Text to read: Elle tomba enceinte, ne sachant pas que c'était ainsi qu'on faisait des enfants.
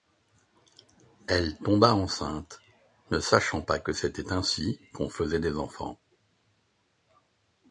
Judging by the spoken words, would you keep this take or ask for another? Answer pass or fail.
pass